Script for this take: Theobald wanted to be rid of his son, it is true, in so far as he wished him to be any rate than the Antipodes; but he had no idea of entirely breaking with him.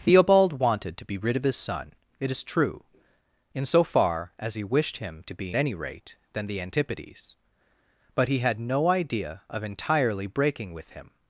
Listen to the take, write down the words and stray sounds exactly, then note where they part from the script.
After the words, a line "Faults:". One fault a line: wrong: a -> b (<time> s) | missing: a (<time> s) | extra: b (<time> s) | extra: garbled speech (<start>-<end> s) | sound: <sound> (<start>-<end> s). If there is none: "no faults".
Theobald wanted to be rid of his son, it is true, in so far as he wished him to be any rate than the Antipodes; but he had no idea of entirely breaking with him.
Faults:
no faults